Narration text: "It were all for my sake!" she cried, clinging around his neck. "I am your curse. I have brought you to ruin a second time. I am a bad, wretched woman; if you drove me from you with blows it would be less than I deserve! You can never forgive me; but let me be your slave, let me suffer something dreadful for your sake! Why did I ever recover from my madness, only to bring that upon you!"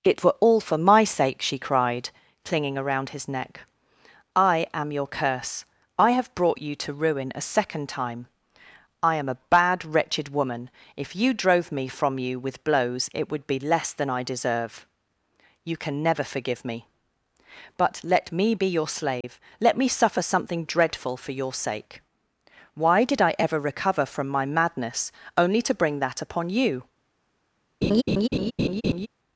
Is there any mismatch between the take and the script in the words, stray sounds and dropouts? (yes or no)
yes